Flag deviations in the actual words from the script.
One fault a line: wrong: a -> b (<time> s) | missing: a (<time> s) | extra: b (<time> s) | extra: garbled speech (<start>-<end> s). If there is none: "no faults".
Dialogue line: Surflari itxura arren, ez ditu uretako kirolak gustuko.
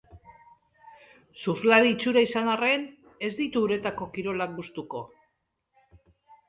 extra: izan (2.3 s)